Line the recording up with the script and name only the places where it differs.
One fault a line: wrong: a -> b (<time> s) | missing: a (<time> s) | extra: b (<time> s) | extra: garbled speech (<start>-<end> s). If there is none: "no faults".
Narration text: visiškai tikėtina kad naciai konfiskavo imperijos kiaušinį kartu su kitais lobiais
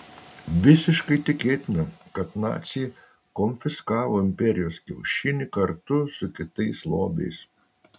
no faults